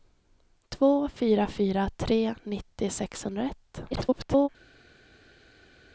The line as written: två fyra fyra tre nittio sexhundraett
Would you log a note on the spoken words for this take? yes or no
yes